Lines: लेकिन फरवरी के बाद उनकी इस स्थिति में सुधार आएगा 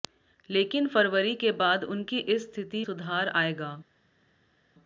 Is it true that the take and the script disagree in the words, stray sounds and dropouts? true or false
true